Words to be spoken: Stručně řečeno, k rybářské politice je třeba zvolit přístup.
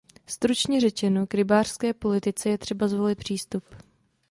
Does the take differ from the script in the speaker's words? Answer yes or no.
no